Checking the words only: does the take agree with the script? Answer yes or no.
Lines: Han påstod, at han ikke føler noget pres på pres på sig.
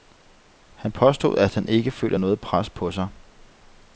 no